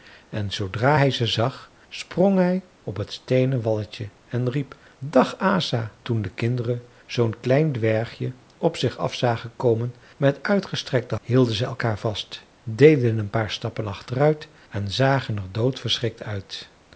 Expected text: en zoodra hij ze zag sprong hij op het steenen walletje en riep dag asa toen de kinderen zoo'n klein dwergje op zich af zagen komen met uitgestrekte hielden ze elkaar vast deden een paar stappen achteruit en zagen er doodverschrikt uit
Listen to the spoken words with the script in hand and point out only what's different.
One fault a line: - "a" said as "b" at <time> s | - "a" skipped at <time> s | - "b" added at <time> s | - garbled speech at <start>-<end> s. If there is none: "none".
none